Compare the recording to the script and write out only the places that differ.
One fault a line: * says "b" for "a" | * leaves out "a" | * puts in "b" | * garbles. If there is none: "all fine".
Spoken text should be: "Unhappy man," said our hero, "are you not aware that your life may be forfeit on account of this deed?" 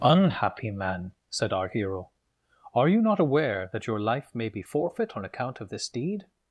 all fine